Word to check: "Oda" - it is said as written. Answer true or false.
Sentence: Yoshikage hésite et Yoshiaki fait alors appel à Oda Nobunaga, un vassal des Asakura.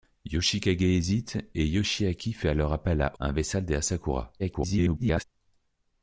false